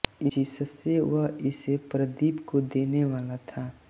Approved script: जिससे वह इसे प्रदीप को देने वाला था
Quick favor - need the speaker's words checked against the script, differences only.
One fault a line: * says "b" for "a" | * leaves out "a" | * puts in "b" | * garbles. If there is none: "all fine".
all fine